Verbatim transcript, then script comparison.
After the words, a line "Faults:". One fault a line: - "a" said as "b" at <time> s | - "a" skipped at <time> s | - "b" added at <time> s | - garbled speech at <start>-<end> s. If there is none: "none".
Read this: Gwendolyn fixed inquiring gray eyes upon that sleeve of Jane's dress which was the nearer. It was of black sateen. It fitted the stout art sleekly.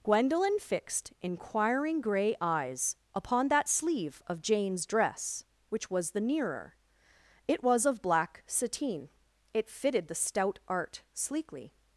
Gwendolyn fixed inquiring gray eyes upon that sleeve of Jane's dress which was the nearer. It was of black sateen. It fitted the stout art sleekly.
Faults:
none